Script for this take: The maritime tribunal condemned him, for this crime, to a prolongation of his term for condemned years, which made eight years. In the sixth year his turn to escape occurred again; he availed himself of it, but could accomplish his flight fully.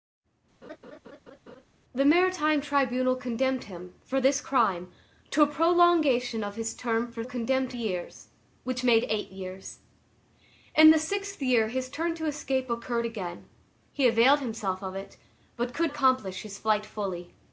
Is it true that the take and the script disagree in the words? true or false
false